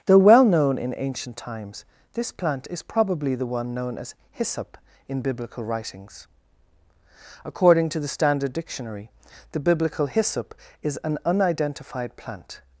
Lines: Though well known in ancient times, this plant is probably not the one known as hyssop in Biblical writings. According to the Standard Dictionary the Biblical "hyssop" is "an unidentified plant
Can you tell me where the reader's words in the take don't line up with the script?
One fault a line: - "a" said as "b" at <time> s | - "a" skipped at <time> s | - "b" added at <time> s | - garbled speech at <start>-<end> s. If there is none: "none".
- "not" skipped at 3.4 s